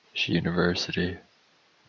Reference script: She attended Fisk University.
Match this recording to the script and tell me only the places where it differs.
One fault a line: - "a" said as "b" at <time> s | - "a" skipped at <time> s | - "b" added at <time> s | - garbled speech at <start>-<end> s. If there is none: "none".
- "attended Fisk" skipped at 0.3 s